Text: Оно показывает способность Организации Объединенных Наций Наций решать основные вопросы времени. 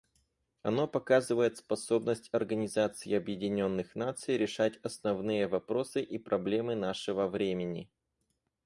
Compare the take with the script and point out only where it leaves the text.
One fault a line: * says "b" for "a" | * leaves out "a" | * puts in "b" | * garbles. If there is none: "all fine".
* leaves out "Наций"
* puts in "и проблемы нашего"